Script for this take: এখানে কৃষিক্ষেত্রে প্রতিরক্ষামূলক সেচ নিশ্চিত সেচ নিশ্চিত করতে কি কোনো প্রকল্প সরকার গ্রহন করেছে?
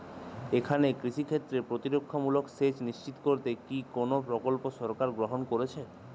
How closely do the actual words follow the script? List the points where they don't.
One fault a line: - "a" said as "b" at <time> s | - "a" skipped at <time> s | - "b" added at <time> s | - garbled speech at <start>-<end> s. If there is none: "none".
- "সেচ নিশ্চিত" skipped at 3.1 s